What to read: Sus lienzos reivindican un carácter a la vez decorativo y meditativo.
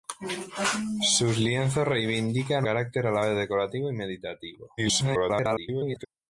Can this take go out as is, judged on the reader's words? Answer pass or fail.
fail